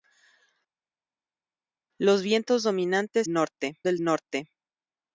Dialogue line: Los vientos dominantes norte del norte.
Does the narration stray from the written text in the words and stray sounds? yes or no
no